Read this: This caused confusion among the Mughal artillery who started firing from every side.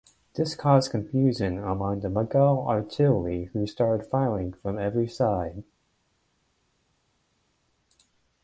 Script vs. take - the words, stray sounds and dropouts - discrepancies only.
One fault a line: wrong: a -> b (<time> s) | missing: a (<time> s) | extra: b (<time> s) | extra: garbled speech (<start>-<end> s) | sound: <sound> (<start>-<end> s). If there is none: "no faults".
no faults